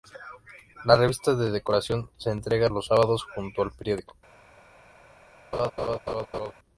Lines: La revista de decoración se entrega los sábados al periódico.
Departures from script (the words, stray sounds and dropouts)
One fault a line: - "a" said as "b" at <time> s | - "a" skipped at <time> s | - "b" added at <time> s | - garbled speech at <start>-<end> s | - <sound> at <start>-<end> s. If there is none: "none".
- "junto" added at 3.4 s
- laugh at 5.5-6.5 s